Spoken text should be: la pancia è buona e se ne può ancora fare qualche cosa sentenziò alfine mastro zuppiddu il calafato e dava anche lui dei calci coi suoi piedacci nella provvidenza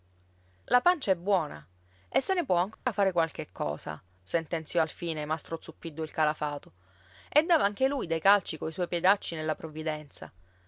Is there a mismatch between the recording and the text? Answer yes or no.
no